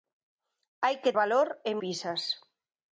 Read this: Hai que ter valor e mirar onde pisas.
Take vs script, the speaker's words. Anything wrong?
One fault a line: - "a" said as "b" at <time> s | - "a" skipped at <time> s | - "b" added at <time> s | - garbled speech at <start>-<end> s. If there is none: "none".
- "ter" skipped at 1.1 s
- "mirar onde" skipped at 1.7 s